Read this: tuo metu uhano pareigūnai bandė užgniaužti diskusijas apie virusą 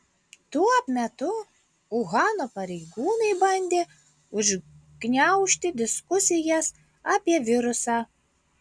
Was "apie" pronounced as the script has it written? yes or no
yes